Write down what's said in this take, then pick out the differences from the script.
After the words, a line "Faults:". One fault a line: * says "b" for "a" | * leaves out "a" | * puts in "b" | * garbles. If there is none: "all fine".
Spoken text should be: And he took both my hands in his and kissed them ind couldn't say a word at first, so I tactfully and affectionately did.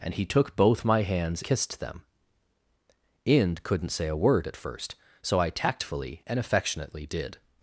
And he took both my hands kissed them ind couldn't say a word at first, so I tactfully and affectionately did.
Faults:
* leaves out "in his and"